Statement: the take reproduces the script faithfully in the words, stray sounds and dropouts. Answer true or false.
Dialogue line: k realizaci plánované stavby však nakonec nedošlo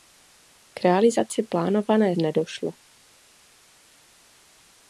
false